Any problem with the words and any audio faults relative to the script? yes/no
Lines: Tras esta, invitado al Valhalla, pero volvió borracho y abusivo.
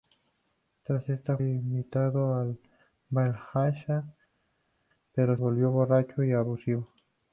no